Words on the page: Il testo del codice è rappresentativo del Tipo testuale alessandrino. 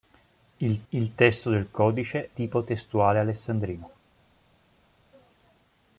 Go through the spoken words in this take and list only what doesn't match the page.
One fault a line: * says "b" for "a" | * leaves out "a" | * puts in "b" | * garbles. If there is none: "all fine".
* puts in "il"
* leaves out "è rappresentativo del"